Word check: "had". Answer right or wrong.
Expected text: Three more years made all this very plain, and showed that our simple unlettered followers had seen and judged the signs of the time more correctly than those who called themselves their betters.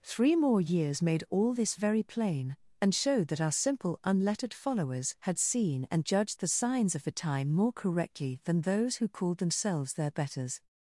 right